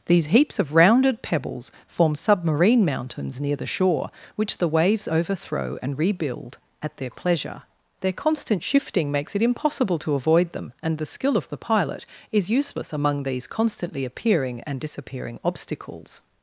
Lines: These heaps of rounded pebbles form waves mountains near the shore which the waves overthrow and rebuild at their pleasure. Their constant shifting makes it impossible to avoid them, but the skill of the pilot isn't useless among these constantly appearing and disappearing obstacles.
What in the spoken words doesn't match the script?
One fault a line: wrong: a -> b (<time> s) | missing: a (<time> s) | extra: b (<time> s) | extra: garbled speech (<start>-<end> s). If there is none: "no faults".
wrong: waves -> submarine (2.1 s)
wrong: but -> and (10.8 s)
wrong: isn't -> is (12.3 s)